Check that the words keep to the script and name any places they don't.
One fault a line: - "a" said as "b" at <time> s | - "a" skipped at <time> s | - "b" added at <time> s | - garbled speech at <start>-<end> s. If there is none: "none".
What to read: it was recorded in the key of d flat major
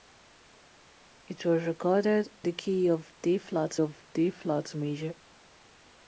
- "in" skipped at 2.3 s
- "of d flat" added at 3.8 s